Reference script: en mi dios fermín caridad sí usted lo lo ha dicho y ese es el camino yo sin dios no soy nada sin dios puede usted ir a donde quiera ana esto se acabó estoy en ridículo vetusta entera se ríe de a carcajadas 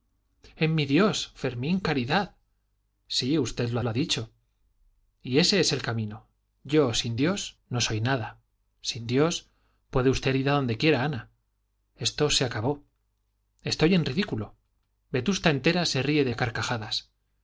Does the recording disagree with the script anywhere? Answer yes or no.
no